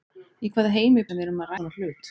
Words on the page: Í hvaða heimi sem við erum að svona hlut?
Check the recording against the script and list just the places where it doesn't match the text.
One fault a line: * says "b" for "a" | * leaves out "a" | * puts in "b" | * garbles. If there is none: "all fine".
all fine